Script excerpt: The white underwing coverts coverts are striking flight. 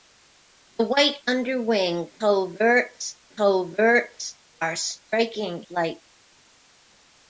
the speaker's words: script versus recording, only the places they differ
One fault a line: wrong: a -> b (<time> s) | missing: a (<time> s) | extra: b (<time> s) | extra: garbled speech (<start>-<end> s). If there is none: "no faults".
no faults